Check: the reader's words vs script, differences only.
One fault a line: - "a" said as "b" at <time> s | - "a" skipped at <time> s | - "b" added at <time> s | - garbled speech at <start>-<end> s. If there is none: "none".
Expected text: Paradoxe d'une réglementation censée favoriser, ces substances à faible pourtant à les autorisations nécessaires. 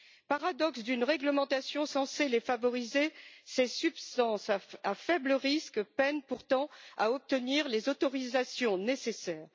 - "les" added at 2.3 s
- "risque peinent" added at 5.3 s
- "obtenir" added at 7.1 s